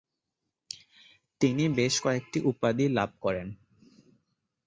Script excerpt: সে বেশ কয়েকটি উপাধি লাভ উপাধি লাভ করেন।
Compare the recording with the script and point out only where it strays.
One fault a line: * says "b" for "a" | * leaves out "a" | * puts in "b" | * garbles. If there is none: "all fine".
* says "তিনি" for "সে"
* leaves out "উপাধি লাভ"